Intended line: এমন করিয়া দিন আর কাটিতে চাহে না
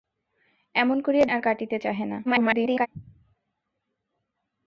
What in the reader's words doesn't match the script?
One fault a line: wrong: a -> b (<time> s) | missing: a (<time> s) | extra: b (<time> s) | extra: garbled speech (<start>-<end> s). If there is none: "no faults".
missing: দিন (1.2 s)
extra: garbled speech (2.2-2.9 s)